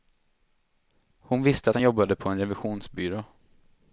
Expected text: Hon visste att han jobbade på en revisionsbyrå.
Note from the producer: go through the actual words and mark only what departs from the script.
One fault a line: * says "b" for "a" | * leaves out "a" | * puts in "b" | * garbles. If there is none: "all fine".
all fine